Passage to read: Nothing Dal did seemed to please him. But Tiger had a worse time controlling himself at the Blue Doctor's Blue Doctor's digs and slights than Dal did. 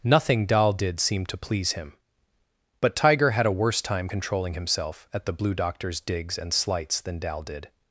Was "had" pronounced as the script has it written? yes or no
yes